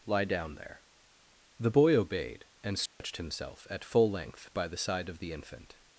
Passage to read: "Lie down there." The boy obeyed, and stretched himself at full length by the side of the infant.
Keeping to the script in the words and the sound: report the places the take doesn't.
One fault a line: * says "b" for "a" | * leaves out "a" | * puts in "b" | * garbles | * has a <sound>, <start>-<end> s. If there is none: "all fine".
* has a dropout, 2.9-3.0 s